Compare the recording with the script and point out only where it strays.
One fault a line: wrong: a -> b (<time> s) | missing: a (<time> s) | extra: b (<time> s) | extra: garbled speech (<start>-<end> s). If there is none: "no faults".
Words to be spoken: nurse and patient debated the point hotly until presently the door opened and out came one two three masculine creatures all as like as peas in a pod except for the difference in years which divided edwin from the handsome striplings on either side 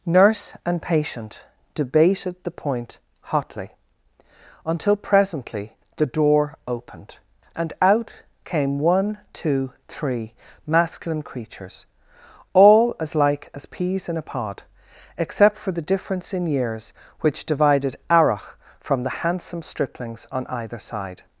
wrong: edwin -> arach (18.1 s)